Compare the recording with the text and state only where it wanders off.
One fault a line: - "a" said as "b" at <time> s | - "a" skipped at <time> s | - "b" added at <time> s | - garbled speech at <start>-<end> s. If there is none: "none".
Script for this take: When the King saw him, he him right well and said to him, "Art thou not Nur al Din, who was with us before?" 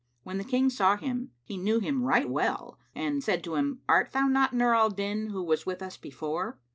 - "knew" added at 1.6 s